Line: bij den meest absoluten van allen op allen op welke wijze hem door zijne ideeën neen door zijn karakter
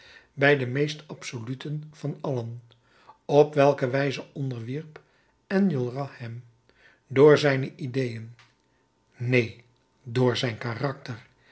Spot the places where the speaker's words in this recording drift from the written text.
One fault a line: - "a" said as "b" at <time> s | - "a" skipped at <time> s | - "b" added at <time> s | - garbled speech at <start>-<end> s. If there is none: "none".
- "allen op welke wijze" said as "welke wijze onderwierp enjolras" at 3.5 s